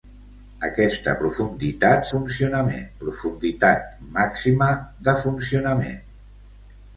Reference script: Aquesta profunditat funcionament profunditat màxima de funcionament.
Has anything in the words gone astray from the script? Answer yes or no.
no